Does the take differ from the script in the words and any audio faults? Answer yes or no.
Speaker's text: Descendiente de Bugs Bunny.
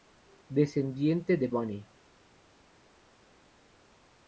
yes